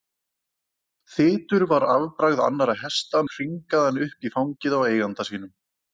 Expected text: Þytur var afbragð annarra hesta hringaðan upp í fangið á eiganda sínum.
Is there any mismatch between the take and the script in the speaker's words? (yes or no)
no